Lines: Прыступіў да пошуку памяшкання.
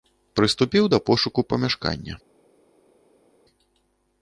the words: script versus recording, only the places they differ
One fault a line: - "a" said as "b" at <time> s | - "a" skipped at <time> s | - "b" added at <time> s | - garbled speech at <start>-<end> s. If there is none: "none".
none